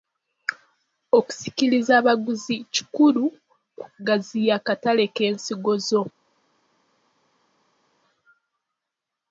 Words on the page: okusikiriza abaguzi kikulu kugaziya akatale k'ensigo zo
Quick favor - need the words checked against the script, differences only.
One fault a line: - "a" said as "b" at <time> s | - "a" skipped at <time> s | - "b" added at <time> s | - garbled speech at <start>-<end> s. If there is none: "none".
none